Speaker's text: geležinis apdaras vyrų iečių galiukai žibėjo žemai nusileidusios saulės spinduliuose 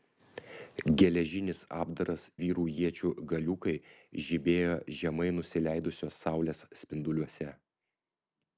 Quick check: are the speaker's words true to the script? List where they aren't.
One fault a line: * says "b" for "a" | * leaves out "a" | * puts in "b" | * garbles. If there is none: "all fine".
all fine